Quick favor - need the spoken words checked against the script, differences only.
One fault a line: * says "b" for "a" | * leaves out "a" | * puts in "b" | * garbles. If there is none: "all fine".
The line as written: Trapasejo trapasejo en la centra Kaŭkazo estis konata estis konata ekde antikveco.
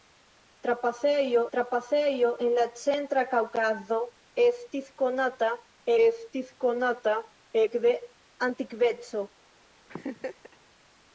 all fine